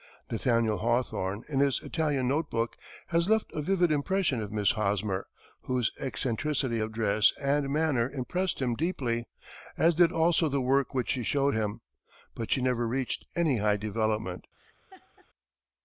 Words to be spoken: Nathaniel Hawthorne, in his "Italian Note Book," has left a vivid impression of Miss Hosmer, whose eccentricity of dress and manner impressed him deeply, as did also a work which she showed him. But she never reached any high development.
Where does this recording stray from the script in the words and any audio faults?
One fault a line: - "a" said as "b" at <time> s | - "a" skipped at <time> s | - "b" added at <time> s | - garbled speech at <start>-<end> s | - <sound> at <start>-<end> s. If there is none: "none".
- "a" said as "the" at 10.5 s
- laugh at 14.6-15.3 s